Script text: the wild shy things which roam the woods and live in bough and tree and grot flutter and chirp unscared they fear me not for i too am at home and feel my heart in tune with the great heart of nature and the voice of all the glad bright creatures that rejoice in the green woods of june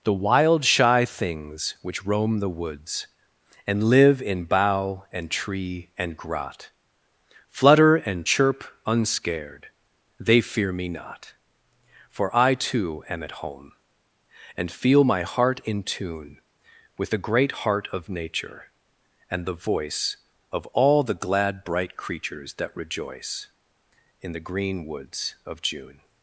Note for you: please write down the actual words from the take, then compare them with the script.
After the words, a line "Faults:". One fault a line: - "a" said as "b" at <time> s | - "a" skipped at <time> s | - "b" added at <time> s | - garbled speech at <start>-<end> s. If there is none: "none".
the wild shy things which roam the woods and live in bough and tree and grot flutter and chirp unscared they fear me not for i too am at home and feel my heart in tune with the great heart of nature and the voice of all the glad bright creatures that rejoice in the green woods of june
Faults:
none